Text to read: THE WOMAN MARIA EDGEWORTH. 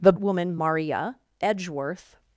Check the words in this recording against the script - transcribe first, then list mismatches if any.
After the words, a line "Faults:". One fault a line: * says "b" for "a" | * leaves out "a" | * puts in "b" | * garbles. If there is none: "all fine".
THE WOMAN MARIA EDGEWORTH.
Faults:
all fine